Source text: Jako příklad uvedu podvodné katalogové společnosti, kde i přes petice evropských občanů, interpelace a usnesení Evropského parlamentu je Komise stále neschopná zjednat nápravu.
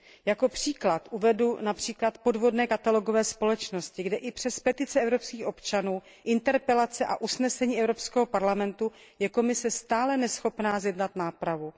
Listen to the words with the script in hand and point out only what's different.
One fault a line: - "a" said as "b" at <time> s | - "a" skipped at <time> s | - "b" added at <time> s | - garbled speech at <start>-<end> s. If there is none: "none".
none